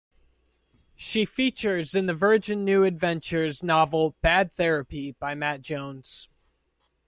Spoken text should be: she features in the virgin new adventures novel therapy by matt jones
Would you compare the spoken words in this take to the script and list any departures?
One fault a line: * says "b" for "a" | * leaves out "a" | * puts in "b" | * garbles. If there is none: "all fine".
* puts in "bad"